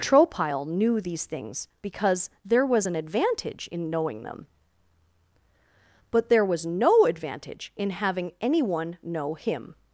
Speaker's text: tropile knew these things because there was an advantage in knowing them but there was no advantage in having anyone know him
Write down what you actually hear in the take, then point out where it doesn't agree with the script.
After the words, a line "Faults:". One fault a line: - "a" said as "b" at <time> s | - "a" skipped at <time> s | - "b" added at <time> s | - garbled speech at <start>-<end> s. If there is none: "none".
tropile knew these things because there was an advantage in knowing them but there was no advantage in having anyone know him
Faults:
none